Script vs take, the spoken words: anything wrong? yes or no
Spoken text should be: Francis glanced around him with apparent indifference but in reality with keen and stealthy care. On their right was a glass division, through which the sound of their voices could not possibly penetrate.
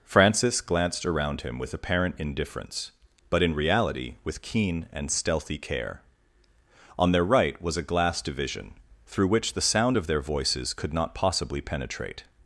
no